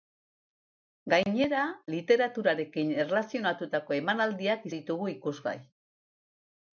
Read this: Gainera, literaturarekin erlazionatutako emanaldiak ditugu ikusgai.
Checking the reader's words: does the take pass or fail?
pass